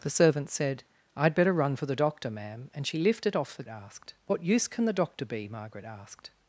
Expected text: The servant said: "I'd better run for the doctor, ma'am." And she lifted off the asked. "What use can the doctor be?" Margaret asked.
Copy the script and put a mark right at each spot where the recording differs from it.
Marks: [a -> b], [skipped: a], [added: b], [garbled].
The servant said: "I'd better run for the doctor, ma'am." And she lifted off the asked. "What use can the doctor be?" Margaret asked.